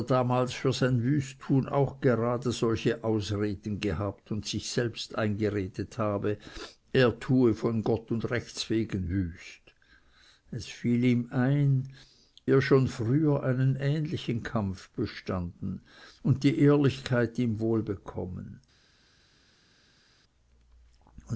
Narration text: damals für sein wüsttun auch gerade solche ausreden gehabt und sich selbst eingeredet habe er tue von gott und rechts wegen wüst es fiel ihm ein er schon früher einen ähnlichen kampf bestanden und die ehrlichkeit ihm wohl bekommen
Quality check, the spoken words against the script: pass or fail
pass